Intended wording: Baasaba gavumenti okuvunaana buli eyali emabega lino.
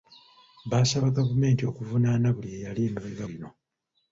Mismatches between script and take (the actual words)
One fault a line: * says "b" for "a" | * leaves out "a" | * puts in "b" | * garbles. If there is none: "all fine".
all fine